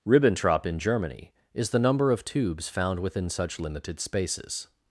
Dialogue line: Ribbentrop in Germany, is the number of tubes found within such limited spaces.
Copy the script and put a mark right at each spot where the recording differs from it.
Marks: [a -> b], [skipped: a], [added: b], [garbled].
Ribbentrop in Germany, is the number of tubes found within such limited spaces.